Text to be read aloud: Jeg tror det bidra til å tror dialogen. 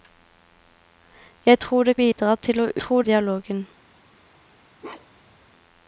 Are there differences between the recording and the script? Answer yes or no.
no